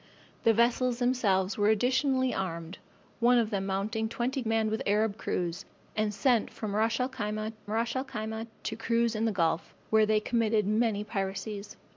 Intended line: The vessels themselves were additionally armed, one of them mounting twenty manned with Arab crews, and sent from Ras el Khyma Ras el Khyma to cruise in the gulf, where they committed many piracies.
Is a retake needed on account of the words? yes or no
no